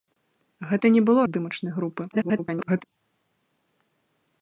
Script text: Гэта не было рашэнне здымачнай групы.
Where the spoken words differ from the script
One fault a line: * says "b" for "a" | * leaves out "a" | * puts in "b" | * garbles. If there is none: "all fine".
* leaves out "рашэнне"
* garbles